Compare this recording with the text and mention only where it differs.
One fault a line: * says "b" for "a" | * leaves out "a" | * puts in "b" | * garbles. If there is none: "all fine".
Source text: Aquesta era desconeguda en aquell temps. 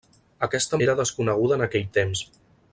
all fine